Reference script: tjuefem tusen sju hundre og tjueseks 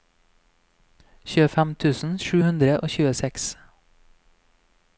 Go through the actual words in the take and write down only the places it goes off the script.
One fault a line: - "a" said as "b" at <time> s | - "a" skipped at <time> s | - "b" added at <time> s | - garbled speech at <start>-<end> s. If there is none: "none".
none